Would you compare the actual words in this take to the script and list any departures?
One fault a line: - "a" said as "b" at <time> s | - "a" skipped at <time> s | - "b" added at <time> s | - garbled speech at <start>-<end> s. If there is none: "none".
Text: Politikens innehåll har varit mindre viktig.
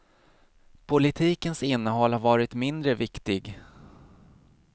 none